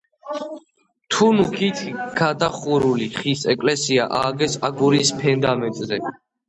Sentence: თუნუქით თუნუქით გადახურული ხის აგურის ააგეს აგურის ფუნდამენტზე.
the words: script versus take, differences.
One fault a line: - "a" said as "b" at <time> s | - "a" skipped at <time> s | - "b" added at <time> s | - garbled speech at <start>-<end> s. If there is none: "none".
- "თუნუქით" skipped at 1.8 s
- "აგურის" said as "ეკლესია" at 3.6 s